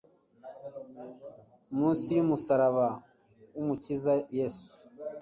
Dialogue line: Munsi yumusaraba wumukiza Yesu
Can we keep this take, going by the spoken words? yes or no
yes